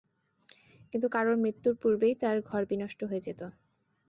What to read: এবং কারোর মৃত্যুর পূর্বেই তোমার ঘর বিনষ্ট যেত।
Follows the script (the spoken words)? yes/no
no